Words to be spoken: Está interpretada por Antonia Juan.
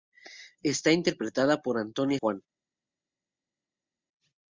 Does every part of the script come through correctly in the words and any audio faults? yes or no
yes